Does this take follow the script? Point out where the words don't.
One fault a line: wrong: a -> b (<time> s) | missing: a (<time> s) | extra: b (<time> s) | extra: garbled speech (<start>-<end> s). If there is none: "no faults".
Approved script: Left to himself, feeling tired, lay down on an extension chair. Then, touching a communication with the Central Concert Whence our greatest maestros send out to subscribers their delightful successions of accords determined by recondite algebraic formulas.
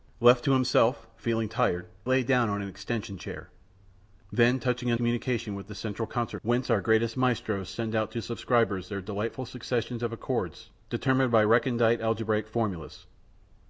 no faults